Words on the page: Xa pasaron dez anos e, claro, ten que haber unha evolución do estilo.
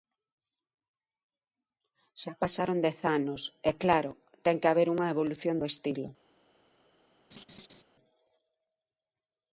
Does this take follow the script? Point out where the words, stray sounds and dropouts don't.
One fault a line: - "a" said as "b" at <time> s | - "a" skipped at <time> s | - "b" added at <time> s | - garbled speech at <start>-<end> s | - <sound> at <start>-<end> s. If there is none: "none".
- laugh at 7.3-7.8 s